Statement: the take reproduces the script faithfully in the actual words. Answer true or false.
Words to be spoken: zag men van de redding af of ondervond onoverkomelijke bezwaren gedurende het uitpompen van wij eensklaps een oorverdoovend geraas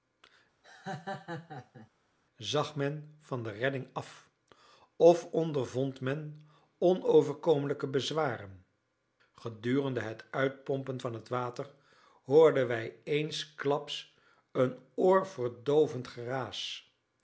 false